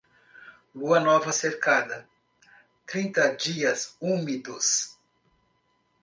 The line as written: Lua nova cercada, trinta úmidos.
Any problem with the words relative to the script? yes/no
yes